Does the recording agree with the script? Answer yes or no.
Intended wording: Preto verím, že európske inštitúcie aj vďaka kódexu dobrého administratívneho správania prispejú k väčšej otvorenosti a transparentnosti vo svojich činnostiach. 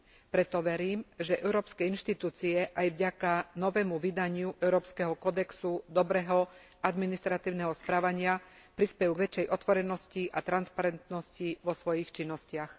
no